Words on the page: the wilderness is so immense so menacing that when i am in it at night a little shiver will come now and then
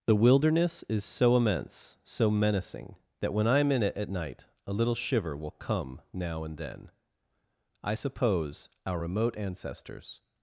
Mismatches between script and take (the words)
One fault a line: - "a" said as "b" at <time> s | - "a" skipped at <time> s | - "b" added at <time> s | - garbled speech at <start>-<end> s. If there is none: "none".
- "i suppose our remote ancestors" added at 7.8 s